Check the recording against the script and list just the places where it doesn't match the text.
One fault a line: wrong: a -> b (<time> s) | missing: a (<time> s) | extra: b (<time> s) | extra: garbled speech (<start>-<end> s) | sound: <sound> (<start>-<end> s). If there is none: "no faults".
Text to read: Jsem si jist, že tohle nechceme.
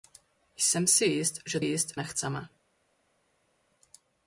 wrong: tohle -> jist (1.6 s)